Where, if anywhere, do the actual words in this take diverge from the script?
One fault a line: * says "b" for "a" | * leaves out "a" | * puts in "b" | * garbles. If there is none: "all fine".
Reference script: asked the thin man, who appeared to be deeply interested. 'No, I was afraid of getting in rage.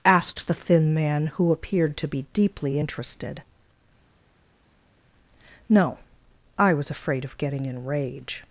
all fine